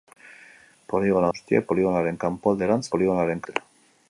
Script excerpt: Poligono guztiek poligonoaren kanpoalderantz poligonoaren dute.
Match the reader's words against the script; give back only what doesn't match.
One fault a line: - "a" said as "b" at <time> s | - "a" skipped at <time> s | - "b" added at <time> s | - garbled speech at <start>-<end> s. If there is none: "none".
none